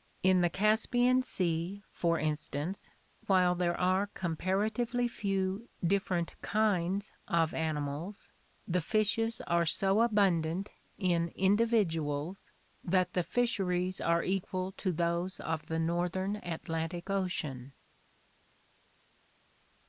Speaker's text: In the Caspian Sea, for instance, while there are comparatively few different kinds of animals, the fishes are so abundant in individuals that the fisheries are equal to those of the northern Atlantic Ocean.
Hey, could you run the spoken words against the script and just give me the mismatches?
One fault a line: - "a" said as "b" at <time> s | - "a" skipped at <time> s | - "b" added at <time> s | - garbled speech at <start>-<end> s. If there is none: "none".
none